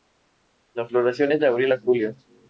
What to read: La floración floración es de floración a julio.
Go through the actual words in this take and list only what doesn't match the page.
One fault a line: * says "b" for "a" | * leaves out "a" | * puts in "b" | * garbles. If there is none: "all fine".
* leaves out "floración"
* says "abril" for "floración"